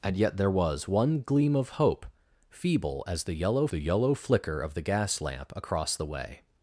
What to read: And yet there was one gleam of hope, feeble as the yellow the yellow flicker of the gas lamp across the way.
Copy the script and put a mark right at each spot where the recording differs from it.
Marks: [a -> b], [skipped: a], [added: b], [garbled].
And yet there was one gleam of hope, feeble as the yellow the yellow flicker of the gas lamp across the way.